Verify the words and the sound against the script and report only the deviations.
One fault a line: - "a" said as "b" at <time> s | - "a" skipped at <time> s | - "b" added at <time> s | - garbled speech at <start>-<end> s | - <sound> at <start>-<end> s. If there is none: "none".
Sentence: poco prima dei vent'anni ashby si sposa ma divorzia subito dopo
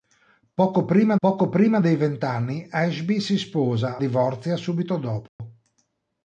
- "poco prima" added at 1.2 s
- "ma" skipped at 4.0 s
- dropout at 5.3-5.4 s